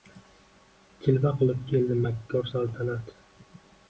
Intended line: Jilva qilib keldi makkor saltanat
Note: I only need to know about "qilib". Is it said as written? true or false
true